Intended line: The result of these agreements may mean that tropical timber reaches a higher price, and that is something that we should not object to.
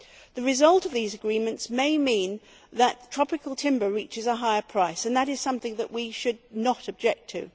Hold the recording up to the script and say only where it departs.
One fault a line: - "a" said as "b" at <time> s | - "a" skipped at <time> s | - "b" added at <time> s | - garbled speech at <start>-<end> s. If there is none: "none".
none